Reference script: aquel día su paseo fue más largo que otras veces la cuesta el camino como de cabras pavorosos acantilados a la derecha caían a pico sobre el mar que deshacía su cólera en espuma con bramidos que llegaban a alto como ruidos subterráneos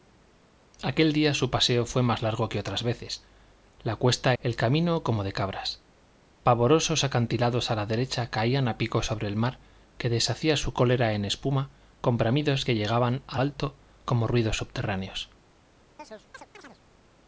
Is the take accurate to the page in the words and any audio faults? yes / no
no